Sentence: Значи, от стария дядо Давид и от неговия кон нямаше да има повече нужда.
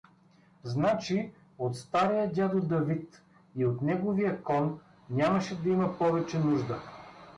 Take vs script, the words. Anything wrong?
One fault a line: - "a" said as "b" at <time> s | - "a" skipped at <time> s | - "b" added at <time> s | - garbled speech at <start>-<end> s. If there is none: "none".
none